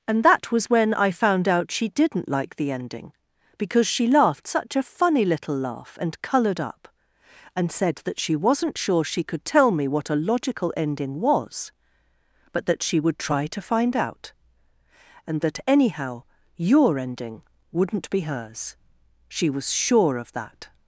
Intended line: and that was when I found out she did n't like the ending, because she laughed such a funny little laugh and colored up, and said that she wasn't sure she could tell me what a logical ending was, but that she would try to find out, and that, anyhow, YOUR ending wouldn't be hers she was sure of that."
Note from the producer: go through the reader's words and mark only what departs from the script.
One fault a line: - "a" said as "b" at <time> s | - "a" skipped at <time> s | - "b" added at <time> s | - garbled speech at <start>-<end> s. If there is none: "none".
none